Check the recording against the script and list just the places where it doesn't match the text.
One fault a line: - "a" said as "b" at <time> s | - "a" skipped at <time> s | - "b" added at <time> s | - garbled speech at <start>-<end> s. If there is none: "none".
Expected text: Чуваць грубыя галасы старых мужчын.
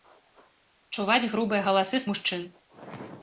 - "старых" skipped at 2.0 s